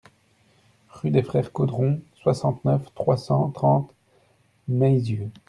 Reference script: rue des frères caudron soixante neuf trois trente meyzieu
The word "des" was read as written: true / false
true